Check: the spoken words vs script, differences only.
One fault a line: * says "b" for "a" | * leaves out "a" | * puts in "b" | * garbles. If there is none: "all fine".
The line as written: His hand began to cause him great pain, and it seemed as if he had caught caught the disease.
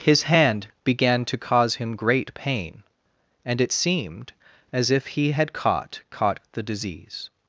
all fine